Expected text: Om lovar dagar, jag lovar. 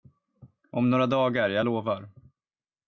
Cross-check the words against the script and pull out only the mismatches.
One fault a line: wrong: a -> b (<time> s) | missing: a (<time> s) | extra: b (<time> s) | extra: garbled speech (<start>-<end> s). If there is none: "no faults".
wrong: lovar -> några (0.9 s)